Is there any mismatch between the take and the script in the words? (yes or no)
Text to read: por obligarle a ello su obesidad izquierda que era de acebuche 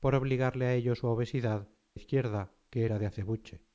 no